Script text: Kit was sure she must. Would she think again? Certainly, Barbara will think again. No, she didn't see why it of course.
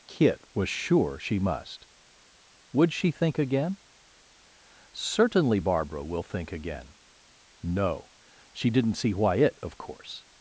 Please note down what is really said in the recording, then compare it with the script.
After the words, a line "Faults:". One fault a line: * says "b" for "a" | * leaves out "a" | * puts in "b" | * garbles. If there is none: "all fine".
Kit was sure she must. Would she think again? Certainly, Barbara will think again. No, she didn't see why it of course.
Faults:
all fine